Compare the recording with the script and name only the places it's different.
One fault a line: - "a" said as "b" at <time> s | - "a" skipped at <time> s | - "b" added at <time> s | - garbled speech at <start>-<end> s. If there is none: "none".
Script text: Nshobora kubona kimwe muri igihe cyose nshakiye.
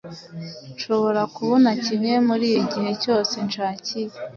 none